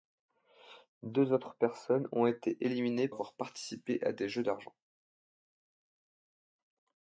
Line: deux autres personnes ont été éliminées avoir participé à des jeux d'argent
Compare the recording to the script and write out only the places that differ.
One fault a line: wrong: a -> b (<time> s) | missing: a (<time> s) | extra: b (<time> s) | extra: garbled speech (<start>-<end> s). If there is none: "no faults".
no faults